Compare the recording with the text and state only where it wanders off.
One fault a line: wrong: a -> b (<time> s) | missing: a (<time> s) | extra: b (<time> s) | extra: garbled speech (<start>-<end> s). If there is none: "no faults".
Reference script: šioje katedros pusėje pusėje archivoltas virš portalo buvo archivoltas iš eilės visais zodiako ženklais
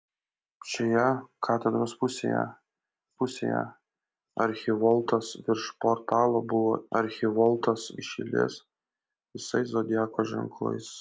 no faults